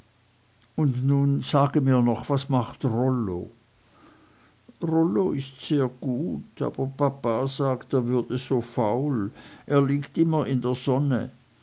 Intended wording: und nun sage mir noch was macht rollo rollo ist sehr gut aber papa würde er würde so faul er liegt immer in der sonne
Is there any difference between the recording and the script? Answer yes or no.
yes